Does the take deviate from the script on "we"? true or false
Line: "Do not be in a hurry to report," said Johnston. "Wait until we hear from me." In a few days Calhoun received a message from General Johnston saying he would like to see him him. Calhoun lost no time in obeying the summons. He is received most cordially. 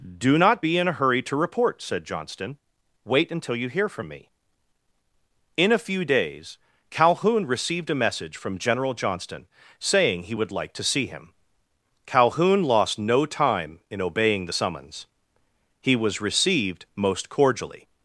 true